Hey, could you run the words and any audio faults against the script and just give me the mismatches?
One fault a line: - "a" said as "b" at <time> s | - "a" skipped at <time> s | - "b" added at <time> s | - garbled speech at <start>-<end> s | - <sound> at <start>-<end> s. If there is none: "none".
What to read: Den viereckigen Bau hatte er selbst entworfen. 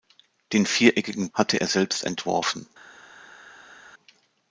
- "Bau" skipped at 1.3 s